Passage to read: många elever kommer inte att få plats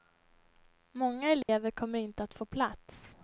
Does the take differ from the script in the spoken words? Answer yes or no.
no